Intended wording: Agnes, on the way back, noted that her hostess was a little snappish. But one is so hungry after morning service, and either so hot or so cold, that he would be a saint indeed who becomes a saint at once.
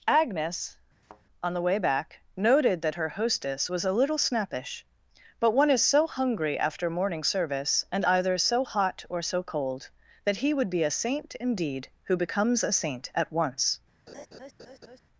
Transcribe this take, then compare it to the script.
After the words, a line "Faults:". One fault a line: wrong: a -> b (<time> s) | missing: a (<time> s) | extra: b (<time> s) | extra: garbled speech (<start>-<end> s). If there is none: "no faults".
Agnes, on the way back, noted that her hostess was a little snappish. But one is so hungry after morning service, and either so hot or so cold, that he would be a saint indeed who becomes a saint at once.
Faults:
no faults